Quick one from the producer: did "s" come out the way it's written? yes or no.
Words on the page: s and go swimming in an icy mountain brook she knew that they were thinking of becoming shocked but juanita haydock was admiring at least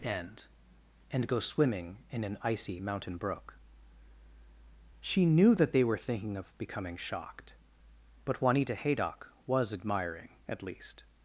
no